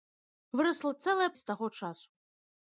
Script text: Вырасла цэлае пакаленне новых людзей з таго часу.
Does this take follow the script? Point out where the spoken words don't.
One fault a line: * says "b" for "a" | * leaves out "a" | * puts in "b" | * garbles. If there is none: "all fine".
* leaves out "пакаленне новых людзей"